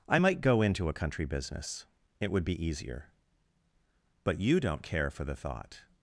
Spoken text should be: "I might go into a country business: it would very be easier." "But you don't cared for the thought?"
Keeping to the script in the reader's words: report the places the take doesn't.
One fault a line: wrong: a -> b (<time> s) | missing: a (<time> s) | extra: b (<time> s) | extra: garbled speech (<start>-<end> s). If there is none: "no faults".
missing: very (2.4 s)
wrong: cared -> care (4.8 s)